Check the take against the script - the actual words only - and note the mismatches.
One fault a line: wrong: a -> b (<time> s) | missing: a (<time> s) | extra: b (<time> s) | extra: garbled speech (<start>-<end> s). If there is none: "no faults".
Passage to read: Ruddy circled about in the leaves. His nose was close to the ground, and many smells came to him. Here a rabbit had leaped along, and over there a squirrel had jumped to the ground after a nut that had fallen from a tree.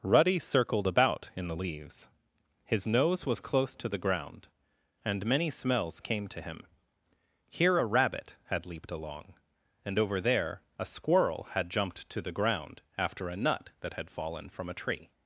no faults